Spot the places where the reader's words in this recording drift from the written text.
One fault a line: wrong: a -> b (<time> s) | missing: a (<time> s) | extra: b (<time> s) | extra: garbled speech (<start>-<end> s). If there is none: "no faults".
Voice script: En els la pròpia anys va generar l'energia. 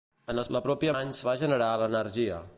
no faults